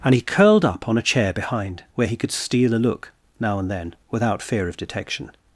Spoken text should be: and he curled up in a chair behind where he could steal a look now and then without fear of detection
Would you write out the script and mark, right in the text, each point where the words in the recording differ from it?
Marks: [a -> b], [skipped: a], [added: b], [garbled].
and he curled up [in -> on] a chair behind where he could steal a look now and then without fear of detection